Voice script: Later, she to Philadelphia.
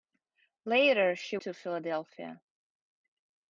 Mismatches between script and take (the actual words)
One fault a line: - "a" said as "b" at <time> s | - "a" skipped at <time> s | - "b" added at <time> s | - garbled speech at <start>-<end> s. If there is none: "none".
none